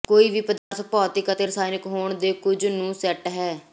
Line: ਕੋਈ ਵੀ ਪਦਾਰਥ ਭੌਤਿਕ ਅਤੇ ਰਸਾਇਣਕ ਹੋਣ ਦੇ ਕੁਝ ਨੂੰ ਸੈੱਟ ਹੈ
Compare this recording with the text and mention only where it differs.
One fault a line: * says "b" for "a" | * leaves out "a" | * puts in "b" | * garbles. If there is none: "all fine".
all fine